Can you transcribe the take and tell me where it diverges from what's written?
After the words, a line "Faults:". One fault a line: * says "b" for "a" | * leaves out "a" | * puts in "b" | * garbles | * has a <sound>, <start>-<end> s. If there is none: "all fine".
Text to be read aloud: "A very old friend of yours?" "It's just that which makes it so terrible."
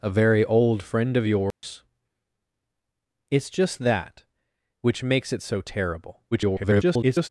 "A very old friend of yours?" "It's just that which makes it so terrible." [garbled]
Faults:
* has a dropout, 1.5-1.6 s
* garbles